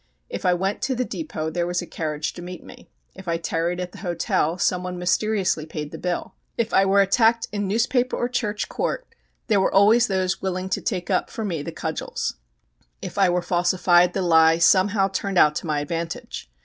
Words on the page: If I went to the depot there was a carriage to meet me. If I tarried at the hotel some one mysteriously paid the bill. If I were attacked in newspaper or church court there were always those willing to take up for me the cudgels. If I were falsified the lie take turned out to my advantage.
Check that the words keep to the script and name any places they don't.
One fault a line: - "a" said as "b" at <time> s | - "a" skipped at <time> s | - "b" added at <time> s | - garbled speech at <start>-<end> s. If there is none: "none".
- "take" said as "somehow" at 14.6 s